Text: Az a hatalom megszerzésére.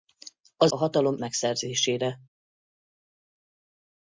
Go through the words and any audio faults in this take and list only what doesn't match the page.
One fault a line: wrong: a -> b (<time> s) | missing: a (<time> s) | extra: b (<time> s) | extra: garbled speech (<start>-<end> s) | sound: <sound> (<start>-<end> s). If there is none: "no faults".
no faults